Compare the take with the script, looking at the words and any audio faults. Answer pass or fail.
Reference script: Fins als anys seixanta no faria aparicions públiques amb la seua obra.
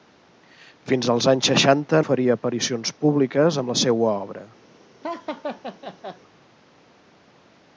fail